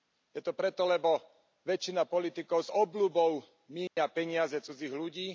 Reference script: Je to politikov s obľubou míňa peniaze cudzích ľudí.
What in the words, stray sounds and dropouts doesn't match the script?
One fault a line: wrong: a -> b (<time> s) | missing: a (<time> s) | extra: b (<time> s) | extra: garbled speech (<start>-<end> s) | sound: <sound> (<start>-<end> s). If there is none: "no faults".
extra: preto lebo väčšina (0.6 s)
sound: dropout (3.9-4.0 s)